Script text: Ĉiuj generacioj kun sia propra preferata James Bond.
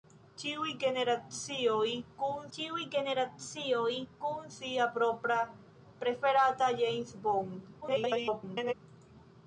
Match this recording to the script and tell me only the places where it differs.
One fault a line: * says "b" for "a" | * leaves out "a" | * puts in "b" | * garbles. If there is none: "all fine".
* puts in "ĉiuj generacioj kun"
* garbles